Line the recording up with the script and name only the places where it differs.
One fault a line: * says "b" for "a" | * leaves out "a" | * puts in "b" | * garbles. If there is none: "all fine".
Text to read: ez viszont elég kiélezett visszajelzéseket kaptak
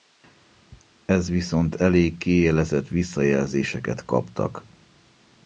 all fine